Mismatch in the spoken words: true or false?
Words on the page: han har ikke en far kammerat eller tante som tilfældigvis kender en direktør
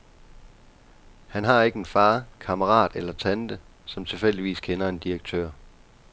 false